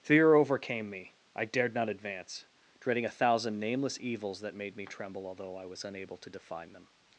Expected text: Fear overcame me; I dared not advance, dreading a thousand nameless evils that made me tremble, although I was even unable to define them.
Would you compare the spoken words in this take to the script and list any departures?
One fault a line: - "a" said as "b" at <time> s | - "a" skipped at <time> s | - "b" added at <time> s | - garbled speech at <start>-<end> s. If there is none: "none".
- "even" skipped at 5.8 s